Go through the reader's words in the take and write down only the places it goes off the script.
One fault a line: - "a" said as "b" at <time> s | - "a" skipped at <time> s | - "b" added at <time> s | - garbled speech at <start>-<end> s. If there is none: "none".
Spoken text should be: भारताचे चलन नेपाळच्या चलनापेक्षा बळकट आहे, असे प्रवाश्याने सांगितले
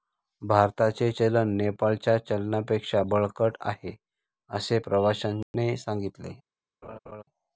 none